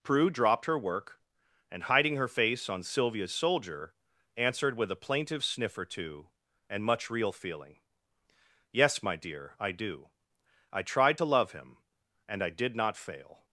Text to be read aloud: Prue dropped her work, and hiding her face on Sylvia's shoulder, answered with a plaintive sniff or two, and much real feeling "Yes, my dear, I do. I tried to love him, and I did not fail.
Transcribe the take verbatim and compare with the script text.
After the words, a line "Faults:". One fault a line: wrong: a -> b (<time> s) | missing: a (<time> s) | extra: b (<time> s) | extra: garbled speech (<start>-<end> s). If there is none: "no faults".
Prue dropped her work, and hiding her face on Sylvia's soldier, answered with a plaintive sniff or two, and much real feeling "Yes, my dear, I do. I tried to love him, and I did not fail.
Faults:
wrong: shoulder -> soldier (3.3 s)